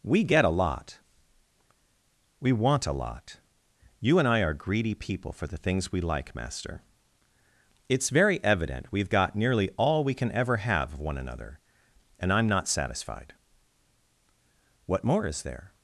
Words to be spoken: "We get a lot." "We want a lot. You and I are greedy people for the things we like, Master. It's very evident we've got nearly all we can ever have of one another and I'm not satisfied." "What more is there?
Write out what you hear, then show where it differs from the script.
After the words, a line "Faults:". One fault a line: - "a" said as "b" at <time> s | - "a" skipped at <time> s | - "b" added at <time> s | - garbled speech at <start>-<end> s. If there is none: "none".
"We get a lot." "We want a lot. You and I are greedy people for the things we like, Master. It's very evident we've got nearly all we can ever have of one another and I'm not satisfied." "What more is there?
Faults:
none